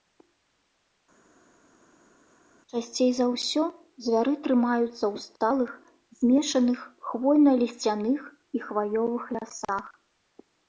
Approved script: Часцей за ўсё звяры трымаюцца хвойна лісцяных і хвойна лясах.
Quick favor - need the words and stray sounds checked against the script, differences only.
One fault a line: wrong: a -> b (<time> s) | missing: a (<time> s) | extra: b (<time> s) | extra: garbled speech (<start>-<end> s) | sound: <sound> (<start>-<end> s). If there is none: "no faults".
extra: ў сталых змешаных (4.9 s)
wrong: хвойна -> хваёвых (8.7 s)